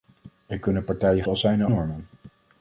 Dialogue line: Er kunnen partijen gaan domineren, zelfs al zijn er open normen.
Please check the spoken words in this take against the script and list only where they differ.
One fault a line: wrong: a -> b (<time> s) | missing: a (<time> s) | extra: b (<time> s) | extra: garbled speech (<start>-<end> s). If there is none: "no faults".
missing: gaan domineren zelfs (1.2 s)
missing: open (1.7 s)